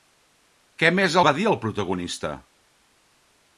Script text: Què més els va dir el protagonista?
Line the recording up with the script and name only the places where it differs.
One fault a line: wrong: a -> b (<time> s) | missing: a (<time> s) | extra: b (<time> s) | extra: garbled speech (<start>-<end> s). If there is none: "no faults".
missing: els (1.2 s)